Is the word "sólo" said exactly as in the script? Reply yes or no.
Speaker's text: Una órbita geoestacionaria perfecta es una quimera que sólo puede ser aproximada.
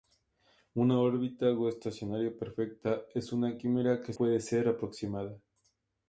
no